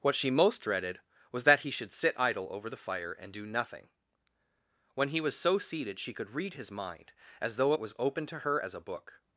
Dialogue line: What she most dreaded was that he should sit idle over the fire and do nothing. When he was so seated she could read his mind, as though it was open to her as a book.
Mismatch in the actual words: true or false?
false